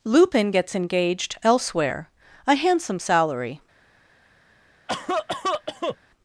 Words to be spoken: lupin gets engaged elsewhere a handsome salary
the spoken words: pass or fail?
pass